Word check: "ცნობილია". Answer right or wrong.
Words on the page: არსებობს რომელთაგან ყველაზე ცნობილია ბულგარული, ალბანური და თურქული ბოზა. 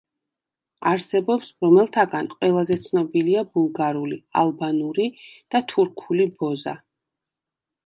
right